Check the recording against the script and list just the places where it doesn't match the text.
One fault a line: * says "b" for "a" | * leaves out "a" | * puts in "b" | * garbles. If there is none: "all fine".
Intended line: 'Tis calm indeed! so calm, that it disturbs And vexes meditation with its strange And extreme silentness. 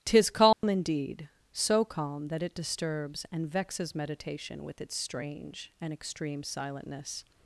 all fine